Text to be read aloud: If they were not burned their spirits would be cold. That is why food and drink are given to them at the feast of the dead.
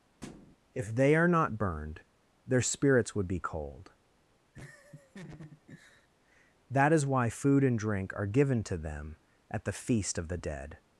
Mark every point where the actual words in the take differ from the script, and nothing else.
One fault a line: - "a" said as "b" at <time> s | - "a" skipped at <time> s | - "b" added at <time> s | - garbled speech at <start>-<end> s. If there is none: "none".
- "were" said as "are" at 1.1 s